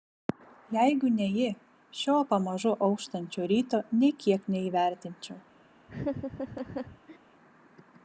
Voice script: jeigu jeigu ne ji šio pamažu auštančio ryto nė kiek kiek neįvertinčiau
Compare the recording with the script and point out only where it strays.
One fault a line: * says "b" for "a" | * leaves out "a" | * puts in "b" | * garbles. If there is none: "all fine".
* leaves out "jeigu"
* leaves out "kiek"